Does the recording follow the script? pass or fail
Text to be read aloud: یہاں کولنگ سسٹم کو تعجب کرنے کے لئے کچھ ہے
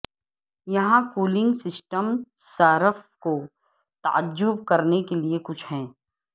fail